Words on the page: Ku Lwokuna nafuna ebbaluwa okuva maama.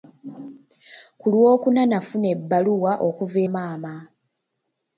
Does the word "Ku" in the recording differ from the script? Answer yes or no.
no